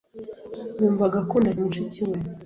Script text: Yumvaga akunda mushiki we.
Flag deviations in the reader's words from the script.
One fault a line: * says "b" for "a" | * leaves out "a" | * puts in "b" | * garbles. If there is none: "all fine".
all fine